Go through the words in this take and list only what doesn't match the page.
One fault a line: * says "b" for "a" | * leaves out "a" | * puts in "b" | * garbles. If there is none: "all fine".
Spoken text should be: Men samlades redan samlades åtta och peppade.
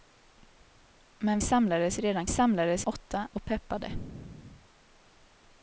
all fine